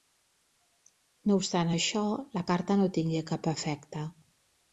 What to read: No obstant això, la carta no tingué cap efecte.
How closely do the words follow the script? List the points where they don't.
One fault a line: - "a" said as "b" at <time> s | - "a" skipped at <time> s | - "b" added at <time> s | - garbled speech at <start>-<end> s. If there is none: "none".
none